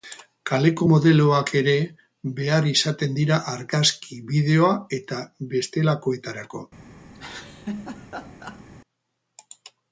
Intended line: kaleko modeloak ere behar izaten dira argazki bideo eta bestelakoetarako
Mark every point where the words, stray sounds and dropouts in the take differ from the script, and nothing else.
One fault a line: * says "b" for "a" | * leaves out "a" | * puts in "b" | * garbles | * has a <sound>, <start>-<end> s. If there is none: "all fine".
* has a laugh, 7.1-8.6 s